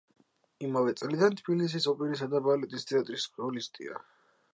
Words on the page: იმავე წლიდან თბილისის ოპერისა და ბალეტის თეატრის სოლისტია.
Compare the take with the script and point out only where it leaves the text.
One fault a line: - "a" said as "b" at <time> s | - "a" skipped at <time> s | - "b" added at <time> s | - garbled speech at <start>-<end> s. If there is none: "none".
none